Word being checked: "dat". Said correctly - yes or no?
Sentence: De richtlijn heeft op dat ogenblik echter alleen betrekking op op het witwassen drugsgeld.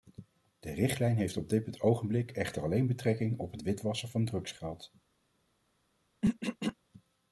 no